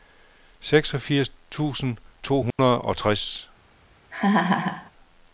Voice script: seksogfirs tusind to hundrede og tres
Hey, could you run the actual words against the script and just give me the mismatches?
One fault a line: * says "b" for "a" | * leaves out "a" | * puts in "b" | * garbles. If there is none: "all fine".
all fine